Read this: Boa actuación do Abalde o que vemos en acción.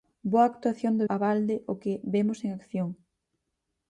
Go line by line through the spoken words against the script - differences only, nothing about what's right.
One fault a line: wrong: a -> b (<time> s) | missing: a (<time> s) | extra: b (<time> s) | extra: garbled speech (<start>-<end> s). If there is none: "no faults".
no faults